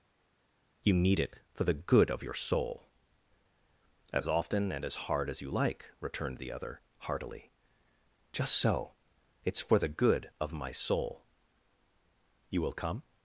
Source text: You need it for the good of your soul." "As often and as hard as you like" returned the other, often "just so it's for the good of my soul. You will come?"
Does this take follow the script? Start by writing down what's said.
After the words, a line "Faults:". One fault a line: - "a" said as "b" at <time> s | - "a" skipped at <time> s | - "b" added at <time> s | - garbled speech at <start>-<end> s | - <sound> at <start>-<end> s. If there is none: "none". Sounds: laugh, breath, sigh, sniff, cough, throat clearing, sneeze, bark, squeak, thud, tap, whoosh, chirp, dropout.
You need it for the good of your soul." "As often and as hard as you like" returned the other, heartily "just so it's for the good of my soul. You will come?"
Faults:
- "often" said as "heartily" at 7.0 s